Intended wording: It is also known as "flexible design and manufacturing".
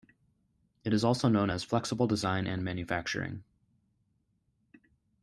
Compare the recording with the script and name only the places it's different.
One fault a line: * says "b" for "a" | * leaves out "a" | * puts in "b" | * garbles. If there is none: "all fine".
all fine